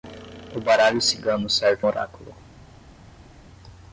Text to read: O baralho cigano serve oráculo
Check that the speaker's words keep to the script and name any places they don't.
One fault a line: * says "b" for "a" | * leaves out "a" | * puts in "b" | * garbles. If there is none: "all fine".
all fine